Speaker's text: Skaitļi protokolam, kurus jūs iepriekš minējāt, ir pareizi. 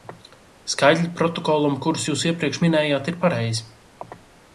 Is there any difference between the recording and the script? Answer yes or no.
no